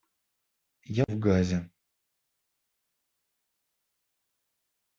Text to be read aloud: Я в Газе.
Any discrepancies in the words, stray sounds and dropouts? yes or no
no